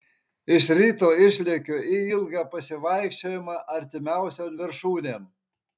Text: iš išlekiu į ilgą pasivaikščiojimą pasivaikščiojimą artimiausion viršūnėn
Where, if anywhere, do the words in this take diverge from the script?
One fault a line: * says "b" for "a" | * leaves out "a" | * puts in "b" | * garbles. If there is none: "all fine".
* puts in "ryto"
* leaves out "pasivaikščiojimą"